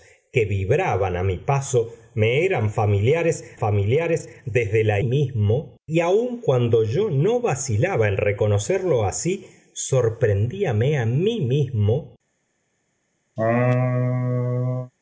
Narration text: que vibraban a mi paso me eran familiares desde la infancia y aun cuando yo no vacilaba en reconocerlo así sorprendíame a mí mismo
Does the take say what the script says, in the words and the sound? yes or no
no